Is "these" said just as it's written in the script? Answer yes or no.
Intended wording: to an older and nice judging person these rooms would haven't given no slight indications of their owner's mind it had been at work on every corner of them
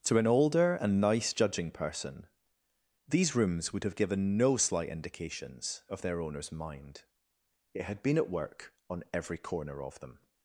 yes